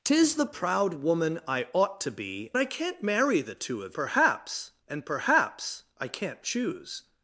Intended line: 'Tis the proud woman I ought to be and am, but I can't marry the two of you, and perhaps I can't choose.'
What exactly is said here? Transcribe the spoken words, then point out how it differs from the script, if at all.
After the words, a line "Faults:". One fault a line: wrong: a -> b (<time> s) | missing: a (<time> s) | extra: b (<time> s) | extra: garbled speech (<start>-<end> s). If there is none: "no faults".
'Tis the proud woman I ought to be I can't marry the two of perhaps, and perhaps I can't choose.'
Faults:
missing: and am but (2.5 s)
wrong: you -> perhaps (3.9 s)